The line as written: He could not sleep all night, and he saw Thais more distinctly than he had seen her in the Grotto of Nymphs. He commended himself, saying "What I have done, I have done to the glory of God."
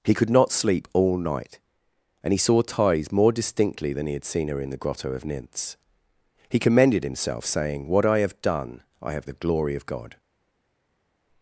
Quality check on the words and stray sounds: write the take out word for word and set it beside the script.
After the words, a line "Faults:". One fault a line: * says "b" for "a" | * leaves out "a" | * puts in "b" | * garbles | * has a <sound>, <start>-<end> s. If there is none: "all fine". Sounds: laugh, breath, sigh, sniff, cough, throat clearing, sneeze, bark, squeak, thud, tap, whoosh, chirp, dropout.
He could not sleep all night, and he saw Thais more distinctly than he had seen her in the Grotto of Nymphs. He commended himself, saying "What I have done, I have the glory of God."
Faults:
* leaves out "done to"